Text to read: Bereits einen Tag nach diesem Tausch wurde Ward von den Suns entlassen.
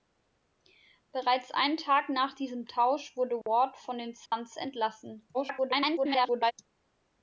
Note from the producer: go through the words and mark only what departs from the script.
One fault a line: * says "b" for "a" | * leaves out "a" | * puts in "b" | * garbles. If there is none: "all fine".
* garbles